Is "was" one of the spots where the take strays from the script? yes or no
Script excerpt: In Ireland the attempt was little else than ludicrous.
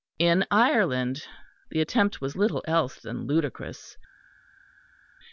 no